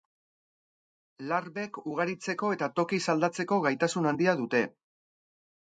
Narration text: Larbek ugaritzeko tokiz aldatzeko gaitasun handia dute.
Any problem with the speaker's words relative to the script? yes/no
yes